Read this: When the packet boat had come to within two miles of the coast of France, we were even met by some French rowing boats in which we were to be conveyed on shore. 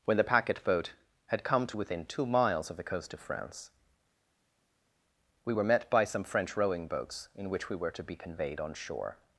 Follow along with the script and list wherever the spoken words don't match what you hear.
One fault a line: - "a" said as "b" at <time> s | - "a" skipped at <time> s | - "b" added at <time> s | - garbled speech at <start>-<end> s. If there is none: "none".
- "even" skipped at 5.6 s